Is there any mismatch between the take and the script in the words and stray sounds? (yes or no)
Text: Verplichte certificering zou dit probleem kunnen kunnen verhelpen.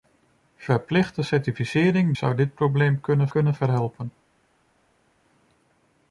no